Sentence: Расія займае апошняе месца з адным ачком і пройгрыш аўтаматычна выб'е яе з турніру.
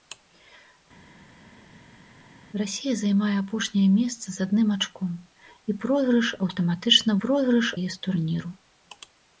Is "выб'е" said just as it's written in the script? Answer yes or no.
no